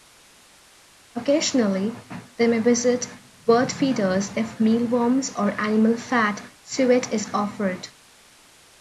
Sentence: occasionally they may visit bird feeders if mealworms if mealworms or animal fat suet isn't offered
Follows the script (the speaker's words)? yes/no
no